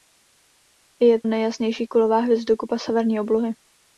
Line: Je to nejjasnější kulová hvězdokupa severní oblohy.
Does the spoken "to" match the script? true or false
false